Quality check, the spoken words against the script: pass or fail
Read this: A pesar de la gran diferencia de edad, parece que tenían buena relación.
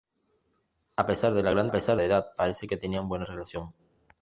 fail